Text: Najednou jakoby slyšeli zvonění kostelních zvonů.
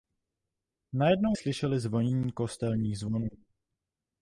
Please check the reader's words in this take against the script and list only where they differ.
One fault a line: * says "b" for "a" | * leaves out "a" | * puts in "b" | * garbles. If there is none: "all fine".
* leaves out "jakoby"